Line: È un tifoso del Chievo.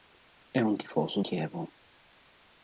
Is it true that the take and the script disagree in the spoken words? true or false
true